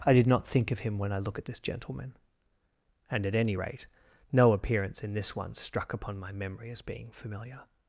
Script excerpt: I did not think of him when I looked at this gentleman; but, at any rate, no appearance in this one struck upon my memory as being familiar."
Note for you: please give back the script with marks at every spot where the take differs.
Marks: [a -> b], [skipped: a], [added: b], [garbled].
I did not think of him when I [looked -> look] at this gentleman; [but, -> and] at any rate, no appearance in this one struck upon my memory as being familiar."